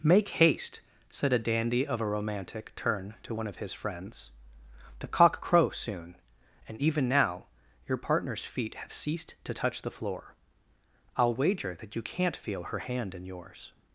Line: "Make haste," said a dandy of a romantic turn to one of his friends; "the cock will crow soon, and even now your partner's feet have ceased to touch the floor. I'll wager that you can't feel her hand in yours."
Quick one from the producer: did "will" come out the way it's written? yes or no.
no